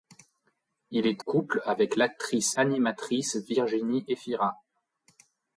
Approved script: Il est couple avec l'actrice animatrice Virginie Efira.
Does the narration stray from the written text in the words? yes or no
no